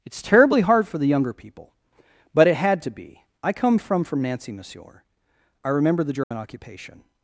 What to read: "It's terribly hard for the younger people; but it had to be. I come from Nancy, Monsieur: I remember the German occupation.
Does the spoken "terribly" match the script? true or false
true